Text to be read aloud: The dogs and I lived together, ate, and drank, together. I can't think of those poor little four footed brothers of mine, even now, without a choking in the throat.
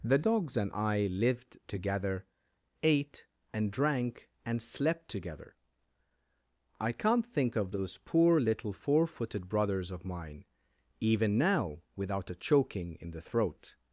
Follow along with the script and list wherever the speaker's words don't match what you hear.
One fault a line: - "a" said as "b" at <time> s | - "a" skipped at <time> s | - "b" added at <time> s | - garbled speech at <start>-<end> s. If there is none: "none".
- "and slept" added at 4.5 s